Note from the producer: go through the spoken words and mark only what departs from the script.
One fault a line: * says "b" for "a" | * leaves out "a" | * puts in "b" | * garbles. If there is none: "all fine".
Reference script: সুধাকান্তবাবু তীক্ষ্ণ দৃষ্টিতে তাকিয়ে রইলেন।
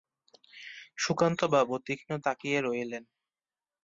* leaves out "দৃষ্টিতে"